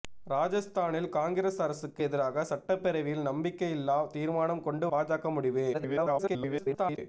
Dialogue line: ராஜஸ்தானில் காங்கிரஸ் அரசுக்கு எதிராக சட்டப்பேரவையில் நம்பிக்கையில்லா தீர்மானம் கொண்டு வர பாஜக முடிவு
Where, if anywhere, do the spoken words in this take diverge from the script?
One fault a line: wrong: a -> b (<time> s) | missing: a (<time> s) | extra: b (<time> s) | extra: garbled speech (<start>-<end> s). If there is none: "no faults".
missing: வர (4.9 s)
extra: garbled speech (5.7-7.0 s)